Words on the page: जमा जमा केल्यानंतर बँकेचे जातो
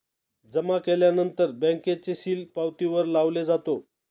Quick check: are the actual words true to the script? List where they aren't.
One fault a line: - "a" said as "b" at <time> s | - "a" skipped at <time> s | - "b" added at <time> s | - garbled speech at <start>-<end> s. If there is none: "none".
- "जमा" skipped at 0.8 s
- "सील पावतीवर लावले" added at 2.1 s